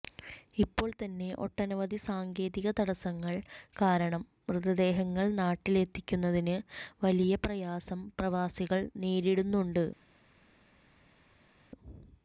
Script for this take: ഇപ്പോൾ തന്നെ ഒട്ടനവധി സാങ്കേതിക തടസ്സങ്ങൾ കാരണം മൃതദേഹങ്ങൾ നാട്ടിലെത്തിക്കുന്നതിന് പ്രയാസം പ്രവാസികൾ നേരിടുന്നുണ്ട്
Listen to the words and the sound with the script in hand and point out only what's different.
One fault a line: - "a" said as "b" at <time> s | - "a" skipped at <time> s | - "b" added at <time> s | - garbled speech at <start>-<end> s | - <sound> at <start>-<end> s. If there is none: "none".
- "വലിയ" added at 7.0 s